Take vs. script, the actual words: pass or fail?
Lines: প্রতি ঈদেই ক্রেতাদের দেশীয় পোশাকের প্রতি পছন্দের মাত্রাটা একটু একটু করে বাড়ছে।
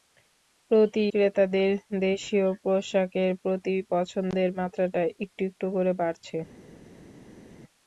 fail